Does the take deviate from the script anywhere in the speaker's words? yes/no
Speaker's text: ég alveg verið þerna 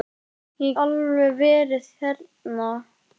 no